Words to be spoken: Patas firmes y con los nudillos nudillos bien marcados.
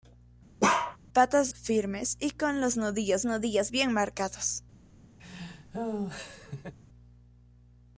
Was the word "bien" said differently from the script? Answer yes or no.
no